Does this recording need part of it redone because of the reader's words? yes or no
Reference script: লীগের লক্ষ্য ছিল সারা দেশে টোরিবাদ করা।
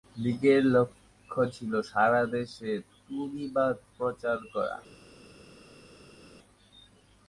yes